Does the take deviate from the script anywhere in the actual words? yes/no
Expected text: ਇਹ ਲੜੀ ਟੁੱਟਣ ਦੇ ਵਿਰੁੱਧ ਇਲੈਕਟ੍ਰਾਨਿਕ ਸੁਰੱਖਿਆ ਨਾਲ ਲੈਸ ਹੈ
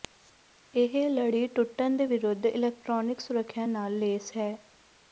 no